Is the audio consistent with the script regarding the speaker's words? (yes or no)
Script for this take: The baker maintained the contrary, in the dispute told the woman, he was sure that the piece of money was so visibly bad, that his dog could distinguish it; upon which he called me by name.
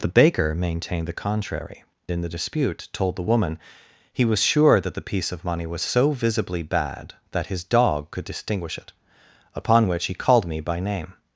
yes